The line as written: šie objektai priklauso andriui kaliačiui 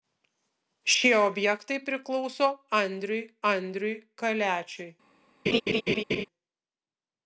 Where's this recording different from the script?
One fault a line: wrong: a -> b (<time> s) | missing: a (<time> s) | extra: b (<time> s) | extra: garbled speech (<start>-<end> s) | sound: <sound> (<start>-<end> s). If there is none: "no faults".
extra: andriui (3.5 s)
sound: laugh (5.5-6.3 s)